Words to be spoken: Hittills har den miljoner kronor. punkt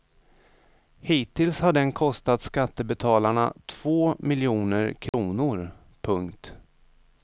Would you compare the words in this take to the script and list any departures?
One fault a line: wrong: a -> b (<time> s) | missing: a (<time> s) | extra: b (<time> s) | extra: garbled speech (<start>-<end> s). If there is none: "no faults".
extra: kostat skattebetalarna två (1.9 s)